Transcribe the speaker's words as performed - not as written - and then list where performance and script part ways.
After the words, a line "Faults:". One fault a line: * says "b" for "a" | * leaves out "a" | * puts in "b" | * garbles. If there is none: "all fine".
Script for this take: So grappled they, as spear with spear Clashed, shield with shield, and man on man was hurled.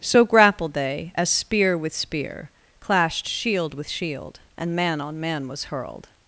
So grappled they, as spear with spear Clashed, shield with shield, and man on man was hurled.
Faults:
all fine